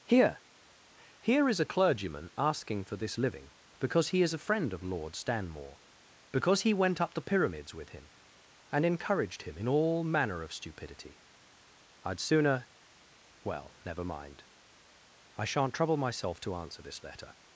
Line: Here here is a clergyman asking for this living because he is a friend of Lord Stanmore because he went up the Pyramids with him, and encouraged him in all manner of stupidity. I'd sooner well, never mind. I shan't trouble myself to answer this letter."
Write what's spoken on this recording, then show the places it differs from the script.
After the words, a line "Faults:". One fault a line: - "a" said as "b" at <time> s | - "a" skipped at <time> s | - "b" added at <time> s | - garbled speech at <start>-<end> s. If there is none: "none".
Here here is a clergyman asking for this living because he is a friend of Lord Stanmore because he went up the Pyramids with him, and encouraged him in all manner of stupidity. I'd sooner well, never mind. I shan't trouble myself to answer this letter."
Faults:
none